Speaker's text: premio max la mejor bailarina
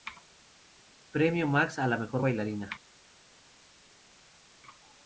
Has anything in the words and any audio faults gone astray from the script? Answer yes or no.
yes